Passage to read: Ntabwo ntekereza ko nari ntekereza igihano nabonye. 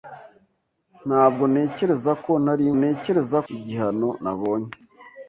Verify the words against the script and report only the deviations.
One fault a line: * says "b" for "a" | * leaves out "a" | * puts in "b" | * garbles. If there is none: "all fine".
all fine